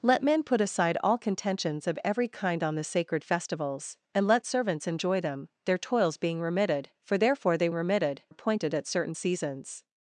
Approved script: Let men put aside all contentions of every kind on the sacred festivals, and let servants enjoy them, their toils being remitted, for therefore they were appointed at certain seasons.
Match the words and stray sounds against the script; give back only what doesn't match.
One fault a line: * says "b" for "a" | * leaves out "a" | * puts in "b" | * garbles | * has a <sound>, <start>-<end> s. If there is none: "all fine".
* says "remitted" for "were"